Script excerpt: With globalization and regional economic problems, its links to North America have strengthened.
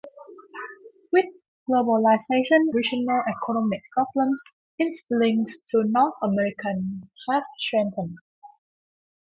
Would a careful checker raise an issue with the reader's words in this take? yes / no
yes